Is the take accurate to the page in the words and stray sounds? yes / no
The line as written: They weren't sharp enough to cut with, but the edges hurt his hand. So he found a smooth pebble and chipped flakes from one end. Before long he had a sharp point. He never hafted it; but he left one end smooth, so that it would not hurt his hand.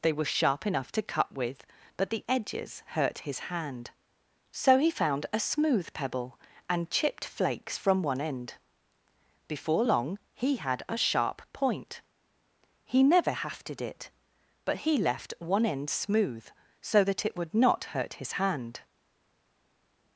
no